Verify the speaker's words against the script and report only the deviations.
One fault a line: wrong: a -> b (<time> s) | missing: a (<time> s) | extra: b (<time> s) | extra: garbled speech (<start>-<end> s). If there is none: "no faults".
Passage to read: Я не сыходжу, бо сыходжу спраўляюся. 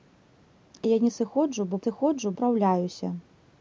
no faults